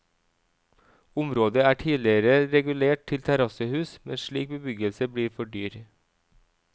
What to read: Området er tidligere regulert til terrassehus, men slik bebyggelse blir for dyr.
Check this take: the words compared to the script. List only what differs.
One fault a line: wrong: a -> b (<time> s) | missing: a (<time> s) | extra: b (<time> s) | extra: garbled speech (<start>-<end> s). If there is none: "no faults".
no faults